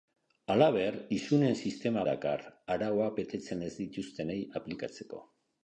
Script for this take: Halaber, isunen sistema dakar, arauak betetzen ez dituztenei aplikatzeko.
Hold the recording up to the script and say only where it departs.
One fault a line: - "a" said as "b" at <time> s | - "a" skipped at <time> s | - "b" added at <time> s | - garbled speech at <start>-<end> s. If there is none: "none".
none